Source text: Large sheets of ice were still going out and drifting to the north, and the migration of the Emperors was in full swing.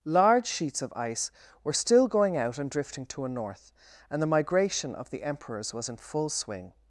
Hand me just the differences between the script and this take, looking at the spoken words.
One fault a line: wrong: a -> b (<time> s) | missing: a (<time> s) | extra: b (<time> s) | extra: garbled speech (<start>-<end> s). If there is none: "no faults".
wrong: the -> a (3.2 s)